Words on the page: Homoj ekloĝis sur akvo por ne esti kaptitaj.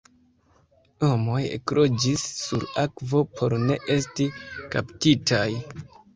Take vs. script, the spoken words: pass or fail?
pass